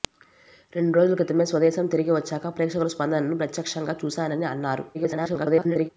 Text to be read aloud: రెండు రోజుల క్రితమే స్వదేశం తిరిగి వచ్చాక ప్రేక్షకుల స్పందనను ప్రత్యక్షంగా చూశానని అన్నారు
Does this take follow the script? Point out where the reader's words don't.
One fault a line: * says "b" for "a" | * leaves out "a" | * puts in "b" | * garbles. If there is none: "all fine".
* garbles